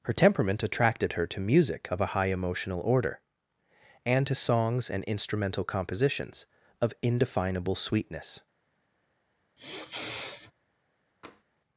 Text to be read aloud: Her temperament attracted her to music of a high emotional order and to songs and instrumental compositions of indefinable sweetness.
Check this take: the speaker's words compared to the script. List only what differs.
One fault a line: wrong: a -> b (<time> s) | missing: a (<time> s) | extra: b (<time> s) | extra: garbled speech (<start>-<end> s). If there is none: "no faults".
no faults